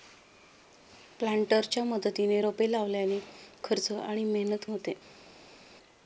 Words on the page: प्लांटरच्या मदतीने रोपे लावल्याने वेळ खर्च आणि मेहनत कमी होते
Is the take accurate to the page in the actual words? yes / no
no